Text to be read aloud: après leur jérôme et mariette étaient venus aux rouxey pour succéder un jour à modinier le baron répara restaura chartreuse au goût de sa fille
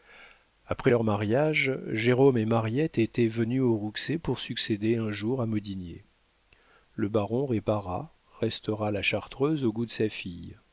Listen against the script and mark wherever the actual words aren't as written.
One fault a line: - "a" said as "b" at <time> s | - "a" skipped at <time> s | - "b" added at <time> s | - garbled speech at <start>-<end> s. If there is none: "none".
- "mariage" added at 1.0 s
- "la" added at 8.9 s